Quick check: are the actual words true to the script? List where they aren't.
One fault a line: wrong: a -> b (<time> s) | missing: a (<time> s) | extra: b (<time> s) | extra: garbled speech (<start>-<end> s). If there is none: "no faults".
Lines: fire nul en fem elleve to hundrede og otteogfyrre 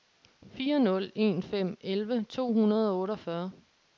no faults